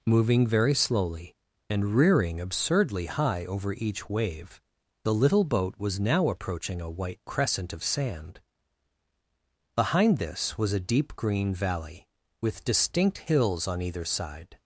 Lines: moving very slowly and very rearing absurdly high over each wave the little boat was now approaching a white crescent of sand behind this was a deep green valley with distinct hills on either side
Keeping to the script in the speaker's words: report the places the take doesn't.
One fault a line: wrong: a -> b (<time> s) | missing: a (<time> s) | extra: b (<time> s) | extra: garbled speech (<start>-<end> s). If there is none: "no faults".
missing: very (1.9 s)